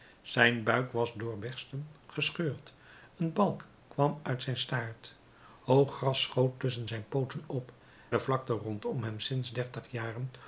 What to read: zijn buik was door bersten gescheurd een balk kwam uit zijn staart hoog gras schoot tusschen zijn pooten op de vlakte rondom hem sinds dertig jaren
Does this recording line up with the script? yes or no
yes